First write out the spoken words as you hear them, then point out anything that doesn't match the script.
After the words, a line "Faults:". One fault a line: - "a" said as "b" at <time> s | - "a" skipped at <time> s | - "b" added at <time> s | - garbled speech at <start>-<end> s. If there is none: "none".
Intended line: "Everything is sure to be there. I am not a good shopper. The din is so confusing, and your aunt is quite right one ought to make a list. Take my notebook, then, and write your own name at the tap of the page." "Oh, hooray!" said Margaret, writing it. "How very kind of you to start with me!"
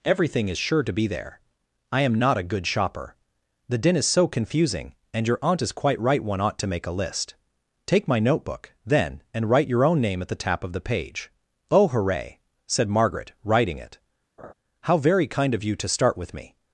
"Everything is sure to be there. I am not a good shopper. The din is so confusing, and your aunt is quite right one ought to make a list. Take my notebook, then, and write your own name at the tap of the page." "Oh, hooray!" said Margaret, writing it. "How very kind of you to start with me!"
Faults:
none